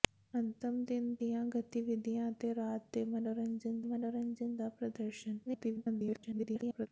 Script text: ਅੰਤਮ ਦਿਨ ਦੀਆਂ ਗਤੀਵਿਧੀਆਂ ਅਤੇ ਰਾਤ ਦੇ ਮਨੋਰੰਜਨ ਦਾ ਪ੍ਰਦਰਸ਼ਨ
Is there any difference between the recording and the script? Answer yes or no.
yes